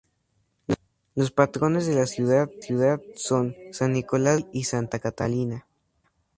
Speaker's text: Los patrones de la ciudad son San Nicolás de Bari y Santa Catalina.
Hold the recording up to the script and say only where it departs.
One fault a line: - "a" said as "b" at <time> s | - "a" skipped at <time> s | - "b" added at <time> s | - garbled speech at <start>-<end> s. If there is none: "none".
- "ciudad" added at 2.6 s